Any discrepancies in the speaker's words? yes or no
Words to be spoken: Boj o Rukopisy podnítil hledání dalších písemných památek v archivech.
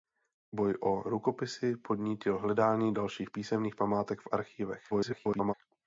yes